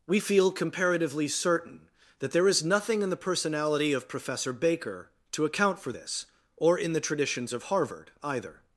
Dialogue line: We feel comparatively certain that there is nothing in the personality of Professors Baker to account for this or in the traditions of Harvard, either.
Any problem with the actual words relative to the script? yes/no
yes